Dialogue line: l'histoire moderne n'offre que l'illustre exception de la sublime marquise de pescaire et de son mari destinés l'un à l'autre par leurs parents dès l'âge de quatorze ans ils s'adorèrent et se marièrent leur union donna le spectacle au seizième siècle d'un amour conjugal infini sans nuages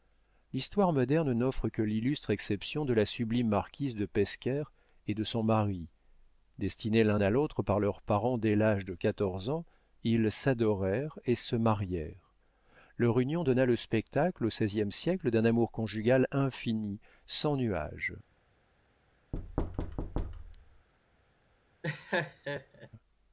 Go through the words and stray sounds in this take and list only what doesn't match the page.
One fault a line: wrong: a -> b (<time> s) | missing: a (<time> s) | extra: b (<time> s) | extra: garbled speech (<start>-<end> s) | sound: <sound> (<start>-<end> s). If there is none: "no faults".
sound: thud (19.3-20.9 s)
sound: laugh (21.8-22.9 s)